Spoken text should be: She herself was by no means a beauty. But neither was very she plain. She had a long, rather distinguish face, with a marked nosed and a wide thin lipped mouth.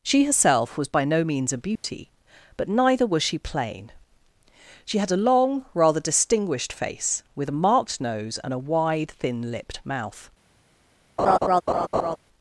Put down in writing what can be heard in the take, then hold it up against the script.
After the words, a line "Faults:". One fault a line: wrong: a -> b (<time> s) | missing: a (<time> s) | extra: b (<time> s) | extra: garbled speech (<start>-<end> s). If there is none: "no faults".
She herself was by no means a beauty. But neither was she plain. She had a long, rather distinguished face, with a marked nose and a wide thin lipped mouth.
Faults:
missing: very (3.2 s)
wrong: distinguish -> distinguished (6.0 s)
wrong: nosed -> nose (8.0 s)